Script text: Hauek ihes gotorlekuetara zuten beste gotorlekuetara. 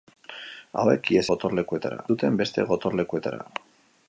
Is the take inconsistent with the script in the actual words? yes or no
no